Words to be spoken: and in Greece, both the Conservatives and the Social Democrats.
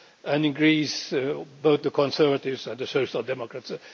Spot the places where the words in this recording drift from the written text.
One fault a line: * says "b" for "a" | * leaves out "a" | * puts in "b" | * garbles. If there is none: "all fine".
all fine